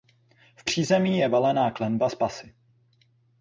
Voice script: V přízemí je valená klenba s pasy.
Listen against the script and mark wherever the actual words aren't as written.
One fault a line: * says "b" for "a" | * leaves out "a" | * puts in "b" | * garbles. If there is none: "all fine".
all fine